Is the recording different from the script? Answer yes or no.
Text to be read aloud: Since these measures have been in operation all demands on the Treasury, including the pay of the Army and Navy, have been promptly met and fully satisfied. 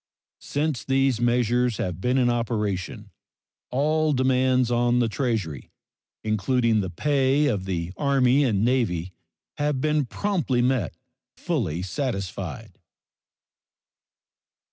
yes